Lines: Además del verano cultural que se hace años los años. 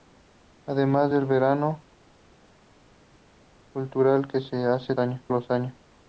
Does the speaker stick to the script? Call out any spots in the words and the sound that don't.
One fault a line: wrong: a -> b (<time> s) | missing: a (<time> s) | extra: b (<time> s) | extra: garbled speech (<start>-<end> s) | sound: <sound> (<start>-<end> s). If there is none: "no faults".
no faults